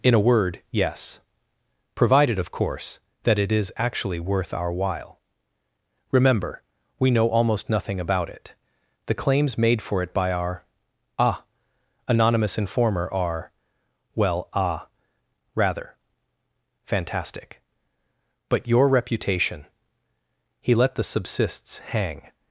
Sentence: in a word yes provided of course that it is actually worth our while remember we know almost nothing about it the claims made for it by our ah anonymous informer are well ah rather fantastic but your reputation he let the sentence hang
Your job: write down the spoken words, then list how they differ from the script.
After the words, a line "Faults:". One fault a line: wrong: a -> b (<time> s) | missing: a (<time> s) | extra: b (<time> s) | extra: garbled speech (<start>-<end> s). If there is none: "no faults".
in a word yes provided of course that it is actually worth our while remember we know almost nothing about it the claims made for it by our ah anonymous informer are well ah rather fantastic but your reputation he let the subsists hang
Faults:
wrong: sentence -> subsists (21.0 s)